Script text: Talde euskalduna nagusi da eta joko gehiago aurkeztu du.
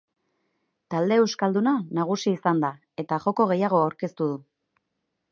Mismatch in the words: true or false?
true